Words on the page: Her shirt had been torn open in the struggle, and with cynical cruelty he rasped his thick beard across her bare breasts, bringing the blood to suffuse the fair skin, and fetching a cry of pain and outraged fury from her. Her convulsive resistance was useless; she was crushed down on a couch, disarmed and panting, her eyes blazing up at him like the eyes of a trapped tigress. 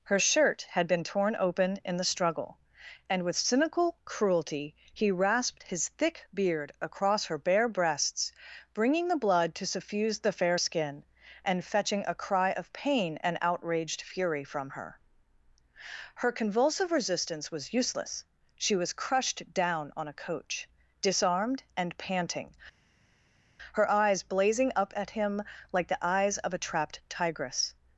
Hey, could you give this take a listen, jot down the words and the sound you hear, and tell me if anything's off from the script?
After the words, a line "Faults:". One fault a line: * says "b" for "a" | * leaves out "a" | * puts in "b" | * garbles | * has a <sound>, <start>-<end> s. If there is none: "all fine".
Her shirt had been torn open in the struggle, and with cynical cruelty he rasped his thick beard across her bare breasts, bringing the blood to suffuse the fair skin, and fetching a cry of pain and outraged fury from her. Her convulsive resistance was useless; she was crushed down on a coach, disarmed and panting, her eyes blazing up at him like the eyes of a trapped tigress.
Faults:
* says "coach" for "couch"